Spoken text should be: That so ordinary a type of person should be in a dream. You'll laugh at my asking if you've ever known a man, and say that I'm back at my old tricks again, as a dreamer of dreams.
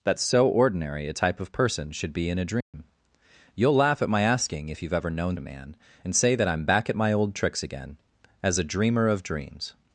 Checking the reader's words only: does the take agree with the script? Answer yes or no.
yes